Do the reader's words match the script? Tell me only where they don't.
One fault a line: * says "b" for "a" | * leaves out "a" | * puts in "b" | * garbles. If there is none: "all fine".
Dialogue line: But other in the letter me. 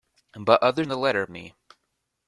all fine